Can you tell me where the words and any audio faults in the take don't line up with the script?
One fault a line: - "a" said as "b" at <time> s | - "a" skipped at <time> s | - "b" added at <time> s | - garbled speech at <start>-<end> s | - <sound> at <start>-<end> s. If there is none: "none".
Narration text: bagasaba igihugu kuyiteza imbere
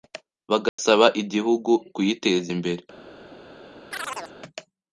- dropout at 0.7-0.8 s
- chirp at 3.9-4.3 s